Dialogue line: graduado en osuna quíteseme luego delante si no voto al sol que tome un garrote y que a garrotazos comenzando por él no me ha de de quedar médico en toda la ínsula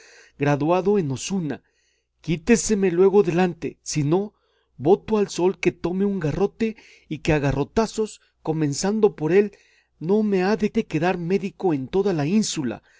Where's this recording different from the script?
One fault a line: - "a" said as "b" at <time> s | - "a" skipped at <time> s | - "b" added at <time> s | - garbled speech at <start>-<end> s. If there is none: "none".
none